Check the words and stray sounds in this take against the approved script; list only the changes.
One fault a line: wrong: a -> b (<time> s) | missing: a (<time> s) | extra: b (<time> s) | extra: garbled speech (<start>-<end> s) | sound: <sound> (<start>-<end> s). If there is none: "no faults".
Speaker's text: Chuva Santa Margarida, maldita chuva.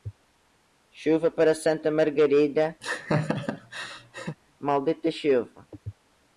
extra: para (1.3 s)
sound: laugh (2.8-4.4 s)